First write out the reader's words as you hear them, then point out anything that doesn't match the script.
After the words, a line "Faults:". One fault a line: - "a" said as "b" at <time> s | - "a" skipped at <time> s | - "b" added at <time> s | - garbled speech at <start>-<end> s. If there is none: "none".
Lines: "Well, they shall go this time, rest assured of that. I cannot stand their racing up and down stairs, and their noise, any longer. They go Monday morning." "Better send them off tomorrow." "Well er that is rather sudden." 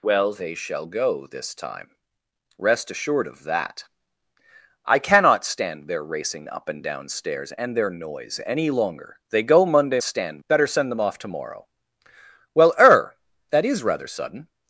"Well, they shall go this time, rest assured of that. I cannot stand their racing up and down stairs, and their noise, any longer. They go Monday stand." "Better send them off tomorrow." "Well er that is rather sudden."
Faults:
- "morning" said as "stand" at 10.0 s